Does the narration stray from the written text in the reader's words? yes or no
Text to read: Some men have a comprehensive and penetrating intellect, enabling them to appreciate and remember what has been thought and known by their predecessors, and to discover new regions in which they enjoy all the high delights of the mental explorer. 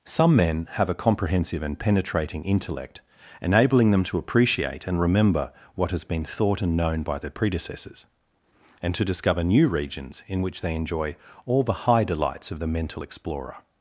no